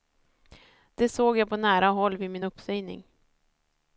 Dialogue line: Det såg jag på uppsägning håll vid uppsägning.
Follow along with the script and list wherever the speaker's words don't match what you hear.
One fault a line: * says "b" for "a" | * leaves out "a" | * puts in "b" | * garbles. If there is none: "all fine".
* says "nära" for "uppsägning"
* puts in "min"